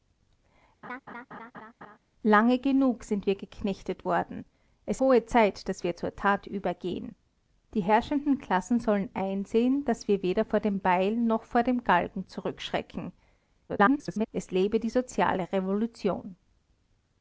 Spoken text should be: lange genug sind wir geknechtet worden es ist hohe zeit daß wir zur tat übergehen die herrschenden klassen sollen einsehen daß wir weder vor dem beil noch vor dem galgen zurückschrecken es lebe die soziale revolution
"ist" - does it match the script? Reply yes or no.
no